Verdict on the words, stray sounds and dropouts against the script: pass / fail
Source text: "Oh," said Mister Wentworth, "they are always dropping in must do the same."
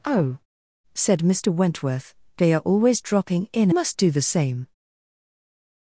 pass